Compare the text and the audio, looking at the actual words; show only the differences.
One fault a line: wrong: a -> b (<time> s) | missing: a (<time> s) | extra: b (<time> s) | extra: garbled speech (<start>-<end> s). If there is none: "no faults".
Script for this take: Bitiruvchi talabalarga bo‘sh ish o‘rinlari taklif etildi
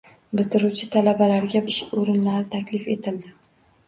missing: bo‘sh (1.6 s)